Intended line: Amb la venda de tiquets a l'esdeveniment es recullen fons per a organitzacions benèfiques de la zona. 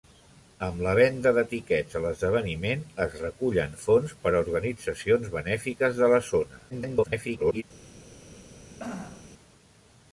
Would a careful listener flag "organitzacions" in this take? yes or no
no